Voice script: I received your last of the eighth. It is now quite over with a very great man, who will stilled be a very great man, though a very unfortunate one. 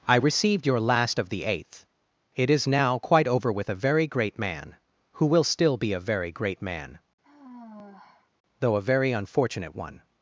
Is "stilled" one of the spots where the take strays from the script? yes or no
yes